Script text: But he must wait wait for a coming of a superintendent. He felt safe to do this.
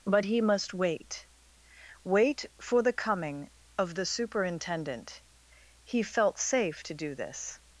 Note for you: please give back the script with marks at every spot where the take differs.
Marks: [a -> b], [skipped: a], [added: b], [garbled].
But he must wait wait for [a -> the] coming of [a -> the] superintendent. He felt safe to do this.